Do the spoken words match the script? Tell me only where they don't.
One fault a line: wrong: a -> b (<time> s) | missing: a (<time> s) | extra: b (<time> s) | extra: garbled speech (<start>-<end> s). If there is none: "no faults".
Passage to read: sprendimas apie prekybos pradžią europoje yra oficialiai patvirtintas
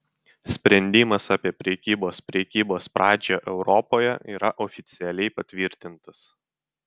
extra: prekybos (2.3 s)